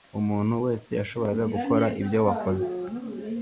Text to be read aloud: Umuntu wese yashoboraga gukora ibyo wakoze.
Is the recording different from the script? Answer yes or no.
no